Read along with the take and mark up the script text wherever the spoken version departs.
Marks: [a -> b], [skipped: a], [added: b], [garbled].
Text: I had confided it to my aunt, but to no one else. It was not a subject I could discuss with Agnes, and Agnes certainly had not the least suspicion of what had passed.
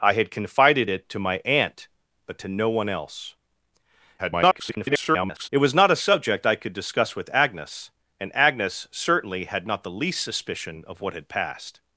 I had confided it to my aunt, but to no one else. [garbled] It was not a subject I could discuss with Agnes, and Agnes certainly had not the least suspicion of what had passed.